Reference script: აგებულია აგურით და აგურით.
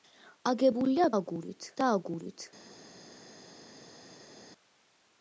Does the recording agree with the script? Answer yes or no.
yes